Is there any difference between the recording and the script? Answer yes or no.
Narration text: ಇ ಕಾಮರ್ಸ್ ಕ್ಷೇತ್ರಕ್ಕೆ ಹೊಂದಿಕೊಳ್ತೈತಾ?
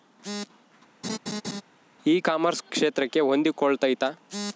no